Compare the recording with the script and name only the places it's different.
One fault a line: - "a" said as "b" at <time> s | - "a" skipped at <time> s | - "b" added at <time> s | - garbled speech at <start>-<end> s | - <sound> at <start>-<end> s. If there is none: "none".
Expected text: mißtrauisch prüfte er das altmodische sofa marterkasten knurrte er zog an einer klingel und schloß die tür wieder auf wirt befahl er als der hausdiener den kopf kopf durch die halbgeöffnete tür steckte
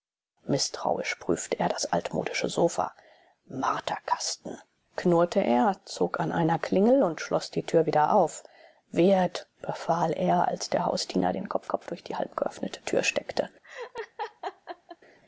- laugh at 13.6-15.0 s